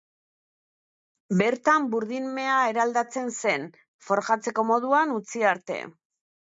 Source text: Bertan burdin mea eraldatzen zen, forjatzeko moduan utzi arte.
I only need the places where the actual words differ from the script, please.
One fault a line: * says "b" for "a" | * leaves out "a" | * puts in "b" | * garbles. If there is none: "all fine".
all fine